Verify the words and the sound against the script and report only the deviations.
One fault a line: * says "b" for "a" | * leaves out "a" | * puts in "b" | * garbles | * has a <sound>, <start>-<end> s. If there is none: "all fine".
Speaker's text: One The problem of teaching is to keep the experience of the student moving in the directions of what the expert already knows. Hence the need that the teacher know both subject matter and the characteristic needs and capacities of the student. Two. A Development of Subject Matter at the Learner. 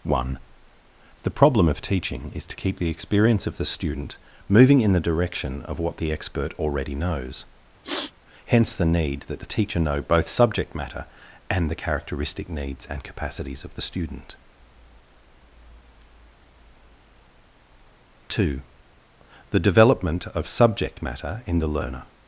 * says "direction" for "directions"
* has a sniff, 7.8-8.1 s
* says "The" for "A"
* says "in" for "at"